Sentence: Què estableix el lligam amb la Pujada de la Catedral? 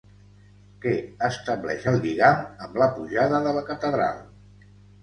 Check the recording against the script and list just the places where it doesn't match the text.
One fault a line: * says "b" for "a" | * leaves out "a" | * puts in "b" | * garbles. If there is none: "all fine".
all fine